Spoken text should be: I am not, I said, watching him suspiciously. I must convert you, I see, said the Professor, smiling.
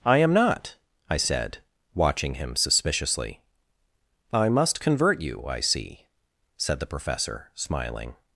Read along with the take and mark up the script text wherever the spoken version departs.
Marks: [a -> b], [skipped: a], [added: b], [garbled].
I am not, I said, watching him suspiciously. I must convert you, I see, said the Professor, smiling.